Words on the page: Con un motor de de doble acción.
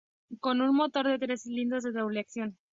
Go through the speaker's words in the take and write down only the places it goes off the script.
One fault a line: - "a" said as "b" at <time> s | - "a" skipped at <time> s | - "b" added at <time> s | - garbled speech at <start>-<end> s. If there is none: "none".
- "tres cilindros" added at 1.2 s